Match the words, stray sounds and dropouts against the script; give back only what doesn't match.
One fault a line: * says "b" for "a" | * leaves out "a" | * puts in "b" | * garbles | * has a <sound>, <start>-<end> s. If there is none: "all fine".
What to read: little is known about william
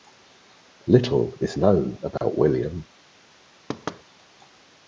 * has a dropout, 2.2-2.2 s
* has a thud, 3.7-4.0 s